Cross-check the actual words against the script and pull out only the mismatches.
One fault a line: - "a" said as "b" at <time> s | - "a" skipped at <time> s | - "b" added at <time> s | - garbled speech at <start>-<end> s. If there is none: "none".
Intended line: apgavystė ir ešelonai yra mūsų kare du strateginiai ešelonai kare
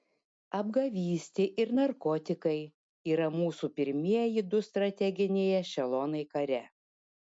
- "ešelonai" said as "narkotikai" at 1.8 s
- "kare" said as "pirmieji" at 3.8 s